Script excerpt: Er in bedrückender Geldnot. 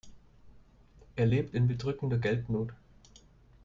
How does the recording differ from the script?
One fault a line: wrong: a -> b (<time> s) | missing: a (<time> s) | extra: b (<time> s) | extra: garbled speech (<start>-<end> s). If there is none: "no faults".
extra: lebt (1.3 s)